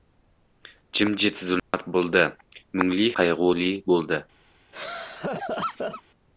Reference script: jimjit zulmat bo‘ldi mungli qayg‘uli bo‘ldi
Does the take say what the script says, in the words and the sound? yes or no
no